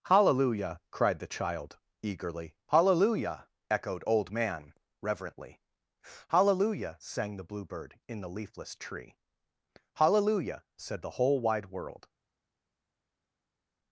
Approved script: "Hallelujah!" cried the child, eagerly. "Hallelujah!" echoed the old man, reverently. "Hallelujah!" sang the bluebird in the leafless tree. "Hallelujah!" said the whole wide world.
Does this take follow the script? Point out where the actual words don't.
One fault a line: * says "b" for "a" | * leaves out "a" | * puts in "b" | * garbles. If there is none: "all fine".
* leaves out "the"